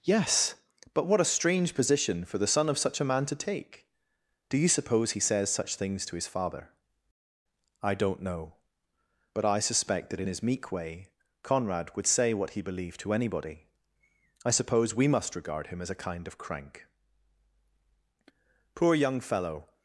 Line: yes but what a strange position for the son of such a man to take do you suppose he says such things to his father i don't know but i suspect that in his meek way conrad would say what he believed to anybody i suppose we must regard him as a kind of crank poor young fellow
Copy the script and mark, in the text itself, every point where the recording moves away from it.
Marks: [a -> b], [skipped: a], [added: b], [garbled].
yes but what a strange position for the son of such a man to take do you suppose he says such things to his father i don't know but i suspect that in his meek way conrad would say what he believed to anybody i suppose we must regard him as a kind of crank poor young fellow